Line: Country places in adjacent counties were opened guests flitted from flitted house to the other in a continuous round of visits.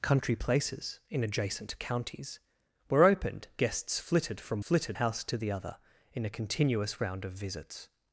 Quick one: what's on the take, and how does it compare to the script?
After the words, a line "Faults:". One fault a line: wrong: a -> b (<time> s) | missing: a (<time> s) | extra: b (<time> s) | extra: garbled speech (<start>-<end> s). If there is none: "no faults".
Country places in adjacent counties were opened guests flitted from flitted house to the other in a continuous round of visits.
Faults:
no faults